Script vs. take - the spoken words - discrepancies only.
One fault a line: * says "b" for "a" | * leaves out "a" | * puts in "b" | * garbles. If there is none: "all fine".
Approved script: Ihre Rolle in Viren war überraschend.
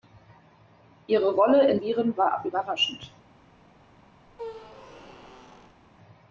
all fine